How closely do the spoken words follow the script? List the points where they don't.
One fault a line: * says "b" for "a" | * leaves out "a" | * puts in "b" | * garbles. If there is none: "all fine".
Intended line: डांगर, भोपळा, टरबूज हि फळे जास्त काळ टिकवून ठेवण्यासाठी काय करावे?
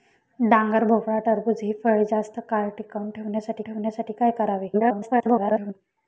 * puts in "ठेवण्यासाठी"
* garbles